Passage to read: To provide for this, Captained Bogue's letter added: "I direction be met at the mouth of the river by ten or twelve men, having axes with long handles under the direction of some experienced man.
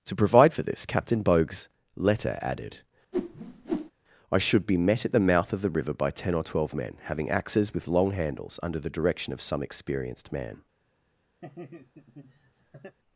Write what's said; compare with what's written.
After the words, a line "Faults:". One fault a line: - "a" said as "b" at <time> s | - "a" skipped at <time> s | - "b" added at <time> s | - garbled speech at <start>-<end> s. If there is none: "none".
To provide for this, Captain Bogue's letter added: "I should be met at the mouth of the river by ten or twelve men, having axes with long handles under the direction of some experienced man.
Faults:
- "Captained" said as "Captain" at 0.8 s
- "direction" said as "should" at 4.4 s